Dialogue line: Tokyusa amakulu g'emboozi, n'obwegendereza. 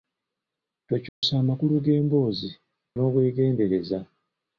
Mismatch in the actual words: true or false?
false